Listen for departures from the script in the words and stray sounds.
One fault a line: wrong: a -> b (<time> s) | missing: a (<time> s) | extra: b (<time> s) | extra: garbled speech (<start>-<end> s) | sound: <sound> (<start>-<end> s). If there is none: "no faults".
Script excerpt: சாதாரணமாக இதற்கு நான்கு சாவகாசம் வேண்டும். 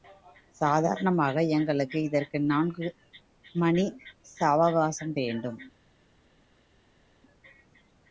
extra: எங்களுக்கு (1.5 s)
extra: மணி (3.5 s)